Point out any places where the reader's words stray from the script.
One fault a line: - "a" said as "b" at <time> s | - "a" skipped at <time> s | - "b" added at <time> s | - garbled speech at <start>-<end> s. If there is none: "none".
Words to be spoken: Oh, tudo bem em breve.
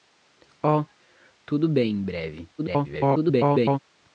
- garbled speech at 2.6-3.8 s